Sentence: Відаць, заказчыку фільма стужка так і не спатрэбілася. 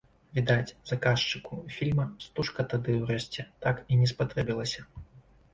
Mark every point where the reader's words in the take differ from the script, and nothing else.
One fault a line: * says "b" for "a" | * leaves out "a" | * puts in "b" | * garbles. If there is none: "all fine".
* puts in "тады ўрэшце"